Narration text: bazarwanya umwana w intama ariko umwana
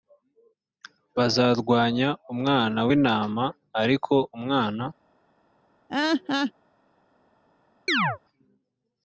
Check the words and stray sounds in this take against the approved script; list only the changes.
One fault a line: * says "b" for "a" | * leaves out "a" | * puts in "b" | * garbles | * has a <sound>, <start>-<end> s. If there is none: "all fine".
* has a laugh, 5.9-6.5 s
* has a chirp, 7.9-8.2 s